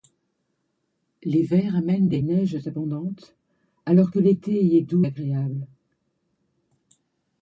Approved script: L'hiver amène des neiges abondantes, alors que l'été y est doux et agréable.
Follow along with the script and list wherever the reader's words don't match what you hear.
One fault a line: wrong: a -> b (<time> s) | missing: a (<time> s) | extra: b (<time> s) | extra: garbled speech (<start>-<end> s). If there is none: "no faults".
missing: et (5.1 s)